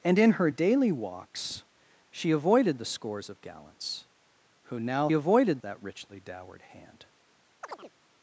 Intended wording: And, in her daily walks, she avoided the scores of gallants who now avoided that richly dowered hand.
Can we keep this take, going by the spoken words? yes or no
yes